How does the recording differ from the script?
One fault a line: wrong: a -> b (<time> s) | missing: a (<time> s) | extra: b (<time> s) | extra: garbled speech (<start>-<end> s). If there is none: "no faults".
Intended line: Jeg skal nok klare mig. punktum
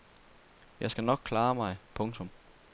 no faults